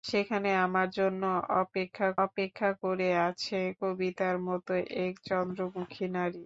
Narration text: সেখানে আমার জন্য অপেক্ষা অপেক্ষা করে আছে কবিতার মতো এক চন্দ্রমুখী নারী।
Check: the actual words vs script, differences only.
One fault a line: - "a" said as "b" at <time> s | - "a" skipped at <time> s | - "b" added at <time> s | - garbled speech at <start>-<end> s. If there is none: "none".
none